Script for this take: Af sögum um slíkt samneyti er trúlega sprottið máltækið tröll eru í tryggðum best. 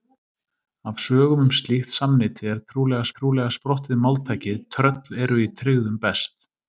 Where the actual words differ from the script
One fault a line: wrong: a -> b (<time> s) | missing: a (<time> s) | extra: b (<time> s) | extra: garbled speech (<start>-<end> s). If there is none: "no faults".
extra: trúlega (3.2 s)